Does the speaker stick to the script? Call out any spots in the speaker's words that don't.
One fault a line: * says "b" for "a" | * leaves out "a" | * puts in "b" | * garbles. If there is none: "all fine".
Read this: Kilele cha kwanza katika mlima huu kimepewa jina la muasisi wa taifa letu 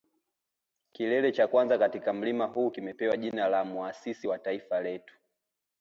all fine